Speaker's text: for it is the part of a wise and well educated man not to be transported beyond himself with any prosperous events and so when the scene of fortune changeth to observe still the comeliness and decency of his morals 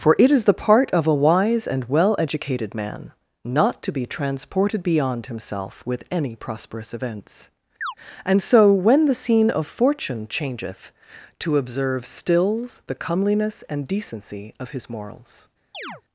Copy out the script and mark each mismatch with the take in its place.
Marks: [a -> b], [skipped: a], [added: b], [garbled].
for it is the part of a wise and well educated man not to be transported beyond himself with any prosperous events and so when the scene of fortune changeth to observe [still -> stills] the comeliness and decency of his morals